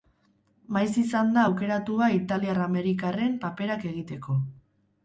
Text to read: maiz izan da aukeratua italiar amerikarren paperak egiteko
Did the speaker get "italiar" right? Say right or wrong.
right